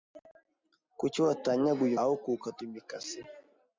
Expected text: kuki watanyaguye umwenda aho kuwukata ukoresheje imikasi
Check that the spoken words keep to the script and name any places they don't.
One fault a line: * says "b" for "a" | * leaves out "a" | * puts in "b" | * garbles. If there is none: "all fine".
* leaves out "umwenda"
* leaves out "ukoresheje"